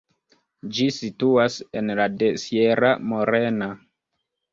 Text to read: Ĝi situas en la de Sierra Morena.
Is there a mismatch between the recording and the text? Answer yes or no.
no